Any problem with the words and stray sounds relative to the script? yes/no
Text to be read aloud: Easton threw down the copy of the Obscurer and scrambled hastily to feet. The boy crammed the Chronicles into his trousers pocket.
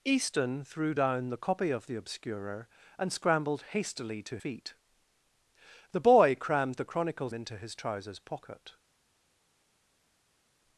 no